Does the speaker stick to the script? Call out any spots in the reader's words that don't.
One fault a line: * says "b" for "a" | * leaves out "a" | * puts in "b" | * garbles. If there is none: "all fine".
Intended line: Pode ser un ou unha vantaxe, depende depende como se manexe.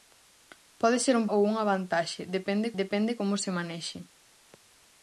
all fine